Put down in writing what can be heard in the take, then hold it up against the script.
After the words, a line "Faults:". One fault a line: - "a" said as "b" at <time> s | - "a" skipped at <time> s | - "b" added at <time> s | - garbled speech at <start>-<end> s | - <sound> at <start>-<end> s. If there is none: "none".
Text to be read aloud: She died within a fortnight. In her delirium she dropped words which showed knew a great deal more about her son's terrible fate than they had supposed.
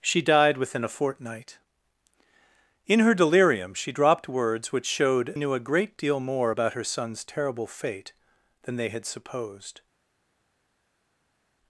She died within a fortnight. In her delirium she dropped words which showed knew a great deal more about her son's terrible fate than they had supposed.
Faults:
none